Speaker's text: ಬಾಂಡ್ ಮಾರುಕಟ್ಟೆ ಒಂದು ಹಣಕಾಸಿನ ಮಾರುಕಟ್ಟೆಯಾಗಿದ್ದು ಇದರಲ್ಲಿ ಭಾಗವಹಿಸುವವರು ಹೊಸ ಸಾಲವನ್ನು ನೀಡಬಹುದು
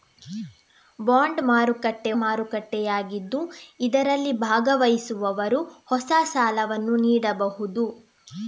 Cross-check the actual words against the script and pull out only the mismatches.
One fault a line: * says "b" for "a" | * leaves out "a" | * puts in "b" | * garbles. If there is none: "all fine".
* leaves out "ಒಂದು ಹಣಕಾಸಿನ"